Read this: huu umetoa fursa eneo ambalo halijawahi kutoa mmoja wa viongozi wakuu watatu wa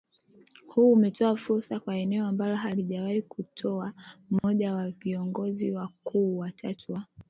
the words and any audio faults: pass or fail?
fail